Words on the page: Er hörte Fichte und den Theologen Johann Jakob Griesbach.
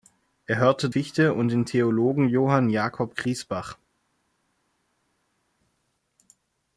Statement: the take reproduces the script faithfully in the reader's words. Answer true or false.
true